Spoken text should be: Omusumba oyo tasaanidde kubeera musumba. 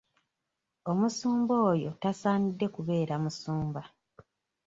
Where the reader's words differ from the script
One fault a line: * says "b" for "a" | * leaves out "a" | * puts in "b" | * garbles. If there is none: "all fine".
all fine